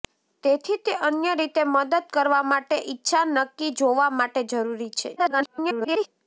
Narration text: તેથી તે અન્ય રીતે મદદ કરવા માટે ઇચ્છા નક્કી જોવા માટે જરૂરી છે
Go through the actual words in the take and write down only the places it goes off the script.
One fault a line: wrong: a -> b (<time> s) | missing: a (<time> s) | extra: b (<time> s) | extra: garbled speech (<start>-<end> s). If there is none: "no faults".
extra: garbled speech (5.2-6.1 s)